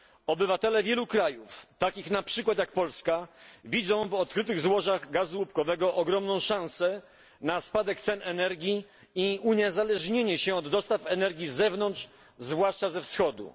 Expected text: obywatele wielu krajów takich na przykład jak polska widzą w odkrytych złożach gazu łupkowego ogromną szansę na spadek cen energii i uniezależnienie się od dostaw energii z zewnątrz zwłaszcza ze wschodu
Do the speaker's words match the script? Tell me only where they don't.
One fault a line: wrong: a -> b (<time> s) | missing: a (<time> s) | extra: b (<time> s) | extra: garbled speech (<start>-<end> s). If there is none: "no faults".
no faults